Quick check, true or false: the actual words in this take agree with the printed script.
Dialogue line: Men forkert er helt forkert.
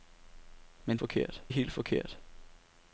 true